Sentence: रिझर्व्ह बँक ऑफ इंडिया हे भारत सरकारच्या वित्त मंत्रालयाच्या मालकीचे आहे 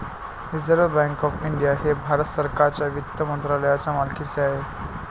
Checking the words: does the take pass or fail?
pass